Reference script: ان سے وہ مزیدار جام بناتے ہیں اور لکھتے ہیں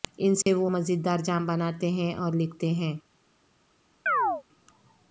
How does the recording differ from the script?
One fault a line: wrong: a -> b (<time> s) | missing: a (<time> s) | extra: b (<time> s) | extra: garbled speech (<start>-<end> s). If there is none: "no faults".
no faults